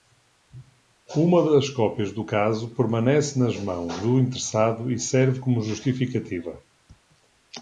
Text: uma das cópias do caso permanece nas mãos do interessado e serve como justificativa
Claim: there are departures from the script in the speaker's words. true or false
false